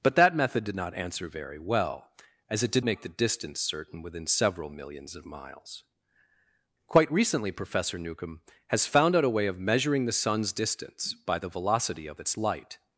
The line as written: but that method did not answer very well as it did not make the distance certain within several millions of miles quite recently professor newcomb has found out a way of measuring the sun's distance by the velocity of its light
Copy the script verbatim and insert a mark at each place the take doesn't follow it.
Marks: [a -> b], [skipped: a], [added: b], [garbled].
but that method did not answer very well as it did [skipped: not] make the distance certain within several millions of miles quite recently professor newcomb has found out a way of measuring the sun's distance by the velocity of its light